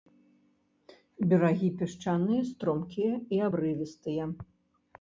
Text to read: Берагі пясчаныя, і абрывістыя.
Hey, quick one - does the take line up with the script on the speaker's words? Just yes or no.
no